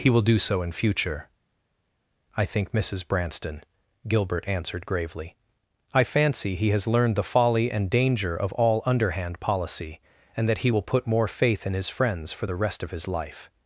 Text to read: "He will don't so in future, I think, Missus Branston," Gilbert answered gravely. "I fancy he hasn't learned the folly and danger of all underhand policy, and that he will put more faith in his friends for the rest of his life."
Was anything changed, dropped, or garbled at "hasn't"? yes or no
yes